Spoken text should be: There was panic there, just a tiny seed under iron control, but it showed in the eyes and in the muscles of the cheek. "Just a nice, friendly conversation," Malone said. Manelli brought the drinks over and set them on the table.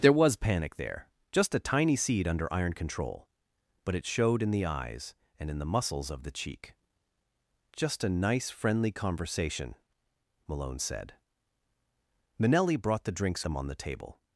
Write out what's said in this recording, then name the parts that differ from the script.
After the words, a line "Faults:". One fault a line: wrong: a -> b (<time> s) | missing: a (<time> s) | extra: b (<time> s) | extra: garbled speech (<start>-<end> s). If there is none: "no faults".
There was panic there, just a tiny seed under iron control, but it showed in the eyes and in the muscles of the cheek. "Just a nice, friendly conversation," Malone said. Manelli brought the drinks them on the table.
Faults:
missing: over and set (13.4 s)